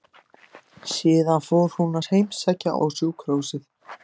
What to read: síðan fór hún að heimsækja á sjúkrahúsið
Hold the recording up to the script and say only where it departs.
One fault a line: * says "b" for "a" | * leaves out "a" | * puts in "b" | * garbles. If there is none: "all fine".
all fine